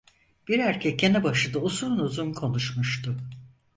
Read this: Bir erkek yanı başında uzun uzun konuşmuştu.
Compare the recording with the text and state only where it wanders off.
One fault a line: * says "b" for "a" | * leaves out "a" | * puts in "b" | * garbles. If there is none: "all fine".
all fine